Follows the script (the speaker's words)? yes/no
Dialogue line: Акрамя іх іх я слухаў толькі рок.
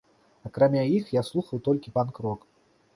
no